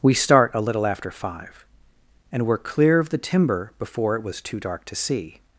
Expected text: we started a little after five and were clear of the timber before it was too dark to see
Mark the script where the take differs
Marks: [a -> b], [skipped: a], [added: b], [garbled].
we [started -> start] a little after five and were clear of the timber before it was too dark to see